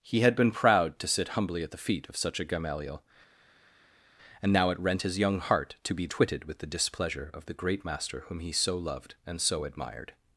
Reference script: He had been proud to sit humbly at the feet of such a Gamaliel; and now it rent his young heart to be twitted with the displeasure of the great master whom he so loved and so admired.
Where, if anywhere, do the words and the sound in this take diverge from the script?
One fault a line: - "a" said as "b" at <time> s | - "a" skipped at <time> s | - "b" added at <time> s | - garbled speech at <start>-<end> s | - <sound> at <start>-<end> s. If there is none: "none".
none